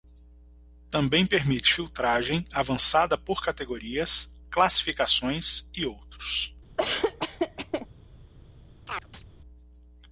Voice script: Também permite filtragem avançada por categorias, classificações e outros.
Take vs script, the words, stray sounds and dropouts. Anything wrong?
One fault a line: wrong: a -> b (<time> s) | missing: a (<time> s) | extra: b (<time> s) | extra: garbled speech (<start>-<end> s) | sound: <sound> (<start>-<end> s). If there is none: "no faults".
sound: laugh (6.8-7.9 s)
sound: chirp (8.9-9.2 s)